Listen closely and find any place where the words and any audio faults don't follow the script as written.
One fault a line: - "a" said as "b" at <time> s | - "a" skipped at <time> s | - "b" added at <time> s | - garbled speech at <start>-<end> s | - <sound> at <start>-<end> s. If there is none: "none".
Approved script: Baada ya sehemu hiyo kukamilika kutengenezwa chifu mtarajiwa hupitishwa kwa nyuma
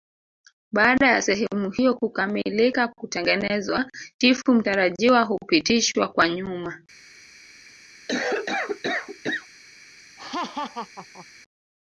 - cough at 8.1-9.5 s
- laugh at 10.2-11.3 s